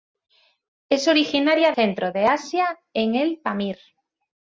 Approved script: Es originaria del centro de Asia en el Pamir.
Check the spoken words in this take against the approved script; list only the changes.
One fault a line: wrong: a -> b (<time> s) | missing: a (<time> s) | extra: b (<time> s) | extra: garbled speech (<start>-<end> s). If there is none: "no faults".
missing: del (1.7 s)